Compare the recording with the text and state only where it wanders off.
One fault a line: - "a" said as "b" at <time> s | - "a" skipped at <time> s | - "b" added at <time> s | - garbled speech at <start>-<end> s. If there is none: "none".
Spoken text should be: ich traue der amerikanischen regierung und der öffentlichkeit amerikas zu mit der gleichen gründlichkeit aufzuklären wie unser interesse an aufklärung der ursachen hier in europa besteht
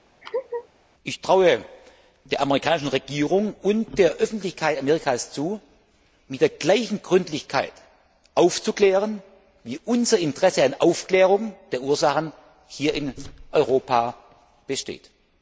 none